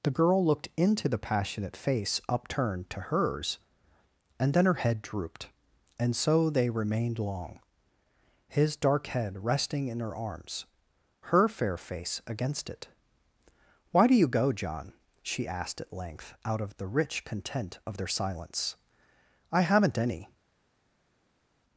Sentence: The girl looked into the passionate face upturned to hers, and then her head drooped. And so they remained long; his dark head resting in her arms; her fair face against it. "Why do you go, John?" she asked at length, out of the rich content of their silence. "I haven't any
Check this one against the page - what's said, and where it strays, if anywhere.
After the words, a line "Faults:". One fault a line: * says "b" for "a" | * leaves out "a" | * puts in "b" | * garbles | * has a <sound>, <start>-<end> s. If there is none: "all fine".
The girl looked into the passionate face upturned to hers, and then her head drooped. And so they remained long; his dark head resting in her arms; her fair face against it. "Why do you go, John?" she asked at length, out of the rich content of their silence. "I haven't any
Faults:
all fine